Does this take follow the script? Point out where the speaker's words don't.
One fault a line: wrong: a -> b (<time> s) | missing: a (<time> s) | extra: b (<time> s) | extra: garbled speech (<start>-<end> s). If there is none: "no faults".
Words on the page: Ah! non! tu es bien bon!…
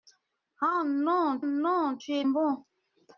extra: non (1.4 s)
missing: bien (2.2 s)